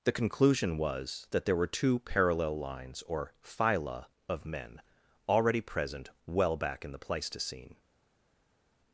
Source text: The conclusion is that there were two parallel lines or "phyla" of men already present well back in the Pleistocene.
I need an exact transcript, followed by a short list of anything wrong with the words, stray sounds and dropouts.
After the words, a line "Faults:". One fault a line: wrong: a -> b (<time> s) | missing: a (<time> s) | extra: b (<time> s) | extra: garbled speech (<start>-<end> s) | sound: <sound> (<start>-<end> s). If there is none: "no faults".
The conclusion was that there were two parallel lines or "phyla" of men already present well back in the Pleistocene.
Faults:
wrong: is -> was (0.8 s)